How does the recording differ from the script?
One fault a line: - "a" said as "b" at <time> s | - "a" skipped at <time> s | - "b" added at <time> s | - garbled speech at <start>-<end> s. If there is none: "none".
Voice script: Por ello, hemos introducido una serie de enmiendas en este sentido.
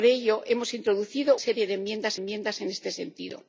- "una" skipped at 1.4 s
- "enmiendas" added at 2.2 s